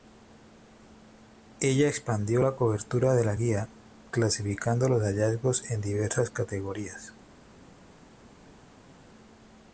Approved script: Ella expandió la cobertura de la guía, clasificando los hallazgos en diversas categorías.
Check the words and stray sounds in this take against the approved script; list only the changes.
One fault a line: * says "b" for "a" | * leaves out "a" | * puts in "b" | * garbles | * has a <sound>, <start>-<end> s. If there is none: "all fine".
all fine